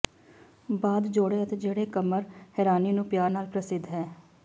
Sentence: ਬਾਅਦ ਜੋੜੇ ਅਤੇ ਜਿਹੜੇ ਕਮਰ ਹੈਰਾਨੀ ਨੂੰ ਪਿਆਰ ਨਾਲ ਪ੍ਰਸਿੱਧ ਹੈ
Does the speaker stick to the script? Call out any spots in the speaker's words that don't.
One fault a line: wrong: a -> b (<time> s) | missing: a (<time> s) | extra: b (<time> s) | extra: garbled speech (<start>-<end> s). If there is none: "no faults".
no faults